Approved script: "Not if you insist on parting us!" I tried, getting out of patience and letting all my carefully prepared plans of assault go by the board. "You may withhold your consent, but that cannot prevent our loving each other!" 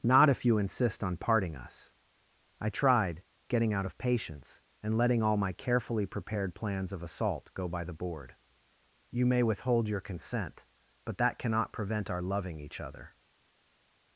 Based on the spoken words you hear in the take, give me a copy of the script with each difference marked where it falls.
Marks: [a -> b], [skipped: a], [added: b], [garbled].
"Not if you insist on parting us!" I tried, getting out of patience and letting all my carefully prepared plans of assault go by the board. "You may withhold your consent, but that cannot prevent our loving each other!"